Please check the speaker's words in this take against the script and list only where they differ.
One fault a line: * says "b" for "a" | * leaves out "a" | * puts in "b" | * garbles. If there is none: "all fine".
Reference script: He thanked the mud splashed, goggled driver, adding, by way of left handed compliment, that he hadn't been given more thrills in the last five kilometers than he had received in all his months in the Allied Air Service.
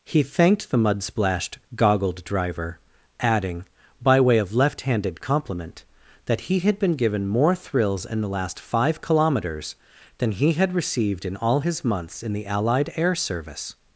* says "had" for "hadn't"